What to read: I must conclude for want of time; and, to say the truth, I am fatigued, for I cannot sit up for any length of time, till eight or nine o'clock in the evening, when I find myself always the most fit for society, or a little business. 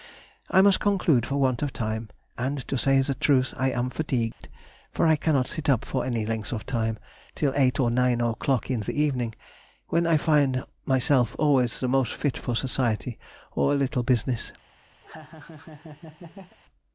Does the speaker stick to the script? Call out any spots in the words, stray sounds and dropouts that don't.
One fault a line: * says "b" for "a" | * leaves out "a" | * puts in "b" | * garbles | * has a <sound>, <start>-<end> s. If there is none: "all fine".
* has a dropout, 4.3-4.4 s
* has a laugh, 15.0-16.6 s